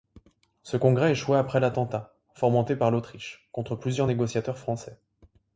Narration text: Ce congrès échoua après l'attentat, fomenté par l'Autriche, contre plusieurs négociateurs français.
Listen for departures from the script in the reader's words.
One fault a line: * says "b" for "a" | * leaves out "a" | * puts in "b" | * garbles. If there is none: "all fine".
all fine